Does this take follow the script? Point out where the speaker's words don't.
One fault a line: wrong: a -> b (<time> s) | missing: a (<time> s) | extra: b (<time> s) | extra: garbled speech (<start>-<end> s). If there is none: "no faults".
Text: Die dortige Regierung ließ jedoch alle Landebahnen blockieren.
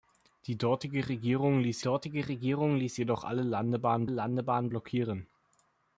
extra: dortige Regierung ließ (1.8 s)
extra: Landebahnen (4.1 s)